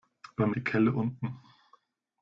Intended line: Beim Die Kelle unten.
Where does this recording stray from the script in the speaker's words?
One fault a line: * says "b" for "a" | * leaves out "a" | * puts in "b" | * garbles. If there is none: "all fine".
all fine